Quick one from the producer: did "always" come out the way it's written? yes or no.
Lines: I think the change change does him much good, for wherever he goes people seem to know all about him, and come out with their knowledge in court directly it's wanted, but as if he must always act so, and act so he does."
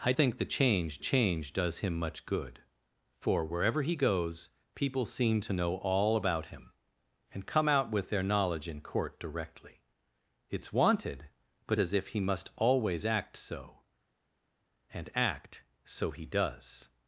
yes